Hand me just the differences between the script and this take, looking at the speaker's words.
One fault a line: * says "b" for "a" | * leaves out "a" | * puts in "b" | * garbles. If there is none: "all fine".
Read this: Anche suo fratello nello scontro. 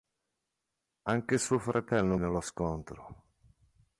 all fine